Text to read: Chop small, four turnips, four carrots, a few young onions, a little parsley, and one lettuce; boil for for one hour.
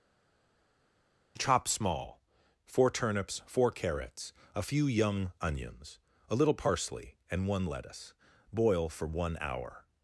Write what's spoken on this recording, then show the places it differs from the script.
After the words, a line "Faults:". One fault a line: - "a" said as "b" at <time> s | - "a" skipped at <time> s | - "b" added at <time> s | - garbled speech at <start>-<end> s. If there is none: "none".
Chop small, four turnips, four carrots, a few young onions, a little parsley, and one lettuce; boil for one hour.
Faults:
- "for" skipped at 9.0 s